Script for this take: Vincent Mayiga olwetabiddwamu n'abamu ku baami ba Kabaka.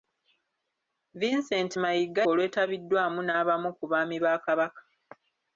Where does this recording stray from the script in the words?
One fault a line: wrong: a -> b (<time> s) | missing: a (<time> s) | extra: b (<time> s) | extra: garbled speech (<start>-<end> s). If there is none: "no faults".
no faults